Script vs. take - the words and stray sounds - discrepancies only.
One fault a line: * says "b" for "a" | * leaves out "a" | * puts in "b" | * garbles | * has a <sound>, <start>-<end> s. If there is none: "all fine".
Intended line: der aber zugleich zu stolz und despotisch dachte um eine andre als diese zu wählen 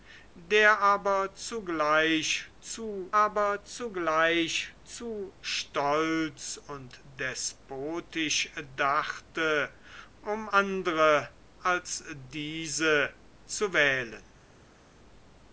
* puts in "aber zugleich zu"
* leaves out "eine"